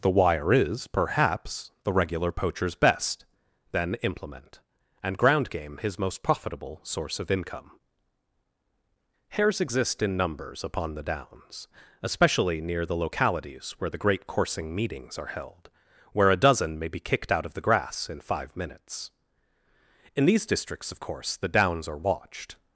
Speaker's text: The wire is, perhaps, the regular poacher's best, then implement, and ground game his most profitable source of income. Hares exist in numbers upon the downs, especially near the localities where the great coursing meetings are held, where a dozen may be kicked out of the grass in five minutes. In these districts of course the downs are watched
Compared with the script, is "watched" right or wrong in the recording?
right